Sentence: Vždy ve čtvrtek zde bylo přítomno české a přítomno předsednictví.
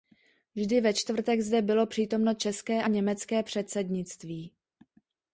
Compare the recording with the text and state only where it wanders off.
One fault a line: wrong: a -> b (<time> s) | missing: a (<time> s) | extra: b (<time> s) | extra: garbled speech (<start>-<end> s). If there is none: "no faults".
wrong: přítomno -> německé (2.9 s)